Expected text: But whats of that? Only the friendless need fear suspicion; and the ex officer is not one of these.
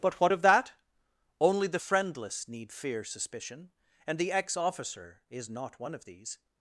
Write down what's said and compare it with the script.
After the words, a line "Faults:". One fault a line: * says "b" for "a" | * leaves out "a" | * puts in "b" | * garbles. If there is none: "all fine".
But what of that? Only the friendless need fear suspicion; and the ex officer is not one of these.
Faults:
* says "what" for "whats"